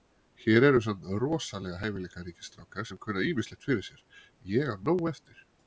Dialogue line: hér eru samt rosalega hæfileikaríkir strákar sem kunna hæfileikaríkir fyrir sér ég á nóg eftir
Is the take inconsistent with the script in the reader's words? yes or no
yes